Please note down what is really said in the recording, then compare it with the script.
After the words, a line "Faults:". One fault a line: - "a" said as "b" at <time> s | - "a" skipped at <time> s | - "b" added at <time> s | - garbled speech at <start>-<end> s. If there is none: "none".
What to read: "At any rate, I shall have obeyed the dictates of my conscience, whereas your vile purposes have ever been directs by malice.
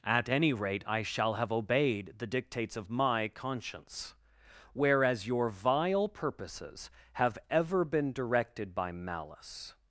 "At any rate, I shall have obeyed the dictates of my conscience, whereas your vile purposes have ever been directed by malice.
Faults:
- "directs" said as "directed" at 8.1 s